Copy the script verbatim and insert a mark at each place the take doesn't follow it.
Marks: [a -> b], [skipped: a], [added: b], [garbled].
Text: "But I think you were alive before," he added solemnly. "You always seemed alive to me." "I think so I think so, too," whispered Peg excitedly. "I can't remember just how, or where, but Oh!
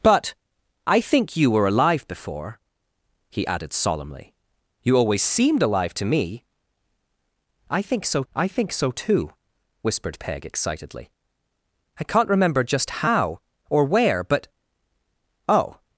"But I think you were alive before," he added solemnly. "You always seemed alive to me." "I think so I think so, too," whispered Peg excitedly. "I can't remember just how, or where, but Oh!